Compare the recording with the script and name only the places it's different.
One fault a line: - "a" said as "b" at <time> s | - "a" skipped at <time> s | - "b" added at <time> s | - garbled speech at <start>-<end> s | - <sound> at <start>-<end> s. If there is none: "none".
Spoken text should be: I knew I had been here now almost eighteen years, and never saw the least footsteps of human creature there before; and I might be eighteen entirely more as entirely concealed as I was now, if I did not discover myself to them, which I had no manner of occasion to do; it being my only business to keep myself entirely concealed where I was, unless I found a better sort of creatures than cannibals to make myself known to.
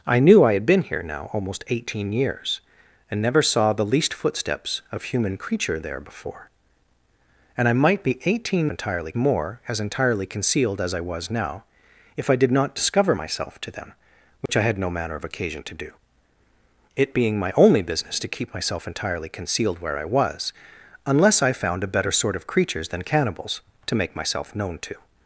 - dropout at 14.5-14.5 s